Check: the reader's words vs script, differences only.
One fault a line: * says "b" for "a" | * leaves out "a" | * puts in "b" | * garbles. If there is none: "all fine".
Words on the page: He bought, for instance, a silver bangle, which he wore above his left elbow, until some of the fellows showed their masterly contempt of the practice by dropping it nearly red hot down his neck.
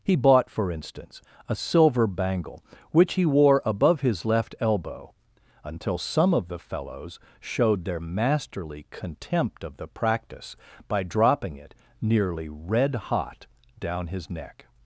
all fine